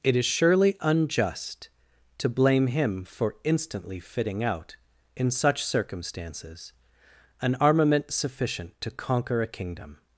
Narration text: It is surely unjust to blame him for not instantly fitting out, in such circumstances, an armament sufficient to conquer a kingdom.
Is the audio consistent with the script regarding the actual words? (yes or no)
no